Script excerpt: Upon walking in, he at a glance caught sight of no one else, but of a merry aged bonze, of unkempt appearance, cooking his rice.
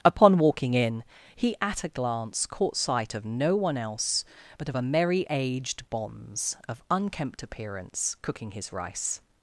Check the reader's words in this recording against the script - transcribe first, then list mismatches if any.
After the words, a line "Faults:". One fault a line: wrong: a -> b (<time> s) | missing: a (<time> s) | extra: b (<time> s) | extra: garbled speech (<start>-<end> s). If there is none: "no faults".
Upon walking in, he at a glance caught sight of no one else, but of a merry aged bonze, of unkempt appearance, cooking his rice.
Faults:
no faults